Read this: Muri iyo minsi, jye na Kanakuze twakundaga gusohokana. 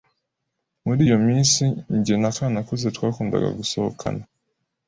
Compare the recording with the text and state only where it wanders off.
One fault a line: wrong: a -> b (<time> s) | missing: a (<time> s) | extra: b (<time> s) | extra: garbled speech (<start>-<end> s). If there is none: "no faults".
no faults